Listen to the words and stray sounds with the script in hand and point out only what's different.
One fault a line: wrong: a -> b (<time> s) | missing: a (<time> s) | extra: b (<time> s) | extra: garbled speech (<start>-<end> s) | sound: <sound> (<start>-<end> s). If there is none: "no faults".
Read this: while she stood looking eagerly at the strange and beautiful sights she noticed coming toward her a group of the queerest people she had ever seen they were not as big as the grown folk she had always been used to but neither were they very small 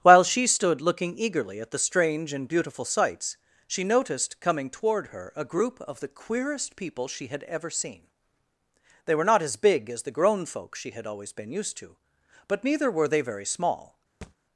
sound: thud (14.2-14.4 s)